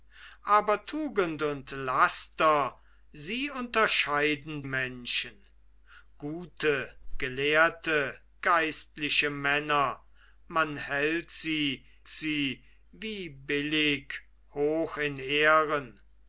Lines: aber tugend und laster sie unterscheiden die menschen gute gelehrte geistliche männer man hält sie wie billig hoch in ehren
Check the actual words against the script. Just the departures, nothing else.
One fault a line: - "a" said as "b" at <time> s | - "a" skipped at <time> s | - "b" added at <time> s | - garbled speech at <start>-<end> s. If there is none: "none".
- "die" skipped at 4.6 s
- "sie" added at 12.1 s